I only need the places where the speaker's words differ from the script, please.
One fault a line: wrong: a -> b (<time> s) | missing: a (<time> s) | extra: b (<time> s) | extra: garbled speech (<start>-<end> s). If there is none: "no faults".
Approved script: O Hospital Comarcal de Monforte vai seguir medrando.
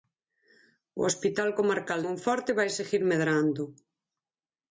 missing: de (2.0 s)